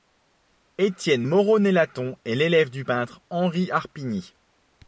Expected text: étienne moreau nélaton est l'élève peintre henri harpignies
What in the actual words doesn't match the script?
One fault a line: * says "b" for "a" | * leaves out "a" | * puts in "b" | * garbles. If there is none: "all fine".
* puts in "du"